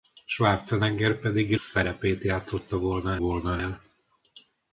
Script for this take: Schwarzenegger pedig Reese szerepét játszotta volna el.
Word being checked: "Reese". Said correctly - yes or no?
no